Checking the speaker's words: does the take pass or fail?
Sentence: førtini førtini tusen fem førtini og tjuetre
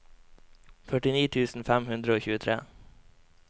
fail